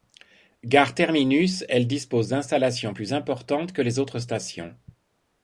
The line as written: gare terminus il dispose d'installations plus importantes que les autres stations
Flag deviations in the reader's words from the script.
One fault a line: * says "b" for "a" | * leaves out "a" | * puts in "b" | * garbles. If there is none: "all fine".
* says "elle" for "il"